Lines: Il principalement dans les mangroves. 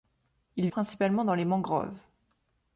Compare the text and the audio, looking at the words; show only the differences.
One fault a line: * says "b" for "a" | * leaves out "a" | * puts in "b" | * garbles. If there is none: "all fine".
all fine